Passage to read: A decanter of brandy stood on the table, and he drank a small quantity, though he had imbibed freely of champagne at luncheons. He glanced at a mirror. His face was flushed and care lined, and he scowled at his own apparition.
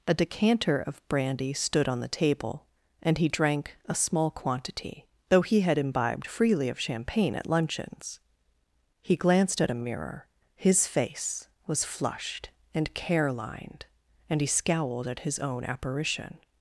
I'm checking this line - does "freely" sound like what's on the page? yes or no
yes